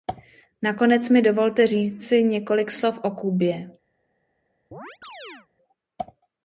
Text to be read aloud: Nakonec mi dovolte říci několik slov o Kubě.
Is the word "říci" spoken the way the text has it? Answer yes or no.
yes